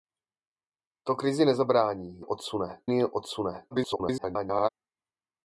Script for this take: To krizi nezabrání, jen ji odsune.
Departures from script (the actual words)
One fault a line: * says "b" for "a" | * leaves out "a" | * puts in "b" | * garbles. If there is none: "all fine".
* says "odsune" for "jen"
* garbles